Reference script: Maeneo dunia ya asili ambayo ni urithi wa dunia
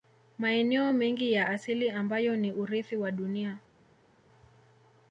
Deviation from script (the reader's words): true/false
true